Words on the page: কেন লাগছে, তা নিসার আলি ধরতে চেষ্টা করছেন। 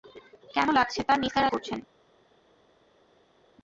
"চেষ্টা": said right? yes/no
no